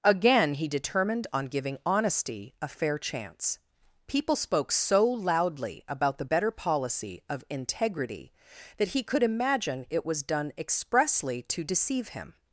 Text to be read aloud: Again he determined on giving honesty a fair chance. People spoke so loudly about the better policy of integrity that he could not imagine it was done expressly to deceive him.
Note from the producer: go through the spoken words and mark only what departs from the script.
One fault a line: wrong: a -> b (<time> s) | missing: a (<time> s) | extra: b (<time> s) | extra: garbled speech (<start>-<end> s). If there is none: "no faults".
missing: not (9.2 s)